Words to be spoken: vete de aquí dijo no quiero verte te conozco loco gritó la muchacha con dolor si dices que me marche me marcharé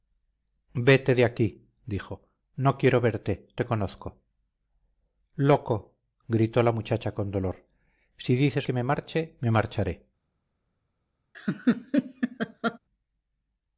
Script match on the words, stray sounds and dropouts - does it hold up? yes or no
no